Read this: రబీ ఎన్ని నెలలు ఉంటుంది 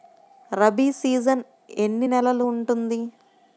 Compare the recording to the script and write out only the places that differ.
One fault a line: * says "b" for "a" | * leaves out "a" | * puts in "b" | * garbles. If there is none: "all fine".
* puts in "సీజన్"